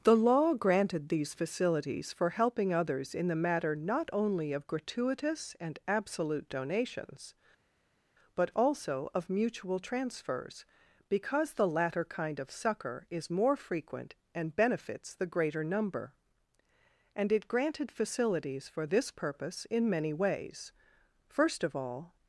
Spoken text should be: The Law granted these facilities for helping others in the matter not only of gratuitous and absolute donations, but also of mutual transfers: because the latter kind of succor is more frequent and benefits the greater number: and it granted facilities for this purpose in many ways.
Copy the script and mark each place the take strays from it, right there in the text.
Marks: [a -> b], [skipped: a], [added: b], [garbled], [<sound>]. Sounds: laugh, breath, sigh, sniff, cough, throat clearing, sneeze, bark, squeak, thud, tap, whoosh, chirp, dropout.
The Law granted these facilities for helping others in the matter not only of gratuitous and absolute donations, but also of mutual transfers: because the latter kind of succor is more frequent and benefits the greater number: and it granted facilities for this purpose in many ways. [added: First of all]